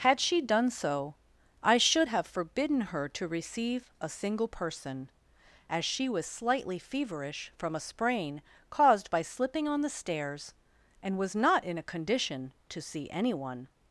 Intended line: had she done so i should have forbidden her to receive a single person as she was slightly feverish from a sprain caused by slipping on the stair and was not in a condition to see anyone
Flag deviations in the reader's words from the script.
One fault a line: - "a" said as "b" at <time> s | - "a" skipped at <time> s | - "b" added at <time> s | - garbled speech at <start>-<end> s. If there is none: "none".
- "stair" said as "stairs" at 9.9 s